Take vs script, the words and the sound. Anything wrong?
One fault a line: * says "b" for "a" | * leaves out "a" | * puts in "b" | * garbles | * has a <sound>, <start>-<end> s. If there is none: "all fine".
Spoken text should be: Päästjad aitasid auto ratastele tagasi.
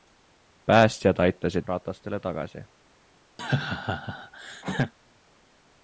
* leaves out "auto"
* has a laugh, 3.4-4.9 s